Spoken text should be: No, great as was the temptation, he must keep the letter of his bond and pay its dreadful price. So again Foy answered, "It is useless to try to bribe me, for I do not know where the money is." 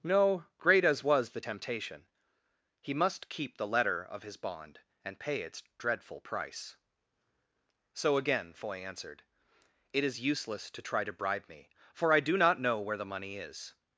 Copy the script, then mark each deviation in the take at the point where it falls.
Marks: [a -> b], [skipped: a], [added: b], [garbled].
No, great as was the temptation, he must keep the letter of his bond and pay its dreadful price. So again Foy answered, "It is useless to try to bribe me, for I do not know where the money is."